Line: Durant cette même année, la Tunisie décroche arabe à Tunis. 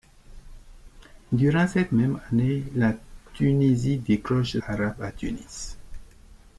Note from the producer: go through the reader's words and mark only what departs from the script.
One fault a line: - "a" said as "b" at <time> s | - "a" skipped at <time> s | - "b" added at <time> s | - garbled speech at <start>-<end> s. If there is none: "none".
none